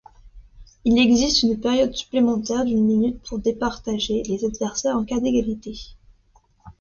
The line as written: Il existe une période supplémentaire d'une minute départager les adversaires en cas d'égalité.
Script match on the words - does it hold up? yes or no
no